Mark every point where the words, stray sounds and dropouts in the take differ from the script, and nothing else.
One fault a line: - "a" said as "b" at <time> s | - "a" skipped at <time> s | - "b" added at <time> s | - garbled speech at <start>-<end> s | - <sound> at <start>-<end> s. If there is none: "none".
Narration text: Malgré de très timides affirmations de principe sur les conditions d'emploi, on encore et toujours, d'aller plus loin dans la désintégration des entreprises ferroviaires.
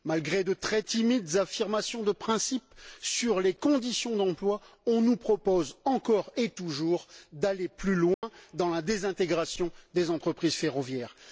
- "nous propose" added at 5.0 s
- dropout at 8.1-8.2 s